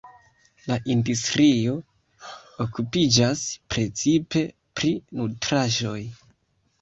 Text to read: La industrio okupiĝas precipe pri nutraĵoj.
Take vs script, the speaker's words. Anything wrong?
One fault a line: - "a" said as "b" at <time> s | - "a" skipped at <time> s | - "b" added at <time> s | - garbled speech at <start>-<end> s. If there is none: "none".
none